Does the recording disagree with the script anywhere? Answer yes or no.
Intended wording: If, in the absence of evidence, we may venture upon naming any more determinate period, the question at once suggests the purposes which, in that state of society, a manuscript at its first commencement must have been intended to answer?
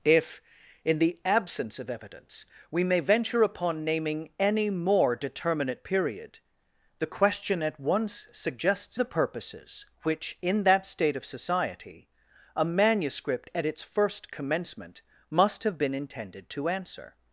no